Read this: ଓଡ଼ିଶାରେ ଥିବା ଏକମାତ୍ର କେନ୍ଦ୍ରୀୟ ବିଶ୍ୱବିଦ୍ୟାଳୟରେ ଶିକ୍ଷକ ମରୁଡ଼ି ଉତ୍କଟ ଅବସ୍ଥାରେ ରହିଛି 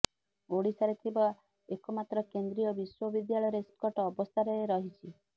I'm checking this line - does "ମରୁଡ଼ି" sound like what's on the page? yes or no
no